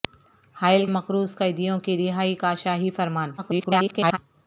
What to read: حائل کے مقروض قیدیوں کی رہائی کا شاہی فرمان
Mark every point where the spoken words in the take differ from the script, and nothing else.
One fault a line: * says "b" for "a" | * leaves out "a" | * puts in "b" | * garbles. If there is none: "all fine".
* leaves out "کے"
* garbles